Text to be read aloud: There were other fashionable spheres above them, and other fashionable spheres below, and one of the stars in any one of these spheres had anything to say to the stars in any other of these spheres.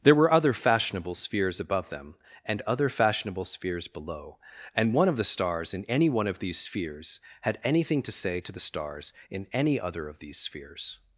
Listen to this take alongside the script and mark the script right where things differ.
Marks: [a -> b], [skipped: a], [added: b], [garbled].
There were other fashionable spheres above them, and other fashionable spheres below, and one of the stars in any one of these spheres had anything to say to the stars in any other of these spheres.